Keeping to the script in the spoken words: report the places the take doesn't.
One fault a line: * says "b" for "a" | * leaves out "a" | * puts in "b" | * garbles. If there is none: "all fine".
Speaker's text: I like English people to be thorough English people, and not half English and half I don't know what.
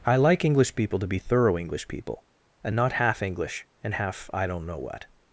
all fine